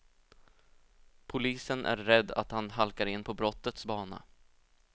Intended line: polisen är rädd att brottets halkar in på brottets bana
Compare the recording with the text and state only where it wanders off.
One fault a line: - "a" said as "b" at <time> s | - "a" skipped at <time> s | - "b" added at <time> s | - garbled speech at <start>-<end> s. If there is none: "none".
- "brottets" said as "han" at 2.5 s